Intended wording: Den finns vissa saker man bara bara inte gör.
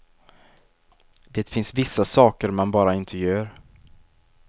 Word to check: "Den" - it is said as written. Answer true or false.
false